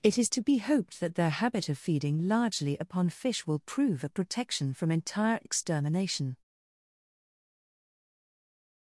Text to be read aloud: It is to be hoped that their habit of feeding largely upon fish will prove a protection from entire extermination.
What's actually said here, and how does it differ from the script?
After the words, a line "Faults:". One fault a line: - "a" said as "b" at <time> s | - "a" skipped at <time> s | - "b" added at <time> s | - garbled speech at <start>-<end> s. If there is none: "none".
It is to be hoped that their habit of feeding largely upon fish will prove a protection from entire extermination.
Faults:
none